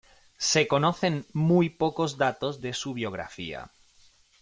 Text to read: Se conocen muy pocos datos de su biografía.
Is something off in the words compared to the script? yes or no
no